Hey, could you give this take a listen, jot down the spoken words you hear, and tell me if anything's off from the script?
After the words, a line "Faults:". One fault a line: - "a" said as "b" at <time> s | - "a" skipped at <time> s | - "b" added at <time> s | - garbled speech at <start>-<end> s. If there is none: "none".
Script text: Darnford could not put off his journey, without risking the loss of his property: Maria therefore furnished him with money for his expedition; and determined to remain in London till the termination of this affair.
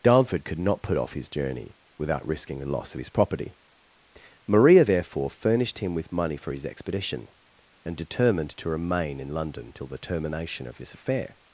Darnford could not put off his journey, without risking the loss of his property: Maria therefore furnished him with money for his expedition; and determined to remain in London till the termination of this affair.
Faults:
none